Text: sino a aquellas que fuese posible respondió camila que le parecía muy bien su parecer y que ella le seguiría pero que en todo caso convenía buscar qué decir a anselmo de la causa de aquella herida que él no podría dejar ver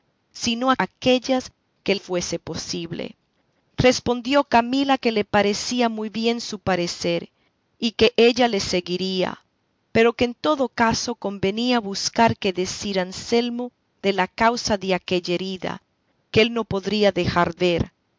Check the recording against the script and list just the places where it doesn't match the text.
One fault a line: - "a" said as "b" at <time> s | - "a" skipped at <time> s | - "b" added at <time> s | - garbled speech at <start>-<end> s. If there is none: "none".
none